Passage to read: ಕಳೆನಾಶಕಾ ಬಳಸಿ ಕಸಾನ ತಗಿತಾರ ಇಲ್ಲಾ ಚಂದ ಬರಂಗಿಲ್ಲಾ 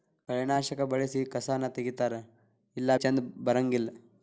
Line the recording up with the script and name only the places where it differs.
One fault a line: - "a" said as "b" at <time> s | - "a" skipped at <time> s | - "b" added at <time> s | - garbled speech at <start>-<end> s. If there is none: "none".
none